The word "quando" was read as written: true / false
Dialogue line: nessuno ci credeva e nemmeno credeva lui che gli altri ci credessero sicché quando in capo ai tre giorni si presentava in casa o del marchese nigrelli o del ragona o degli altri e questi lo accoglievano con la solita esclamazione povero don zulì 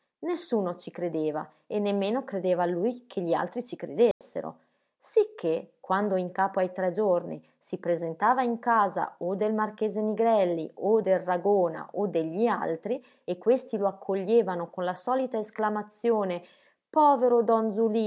true